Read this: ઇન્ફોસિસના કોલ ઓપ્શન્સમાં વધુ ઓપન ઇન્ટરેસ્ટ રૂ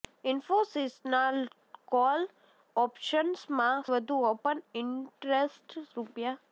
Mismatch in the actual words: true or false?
false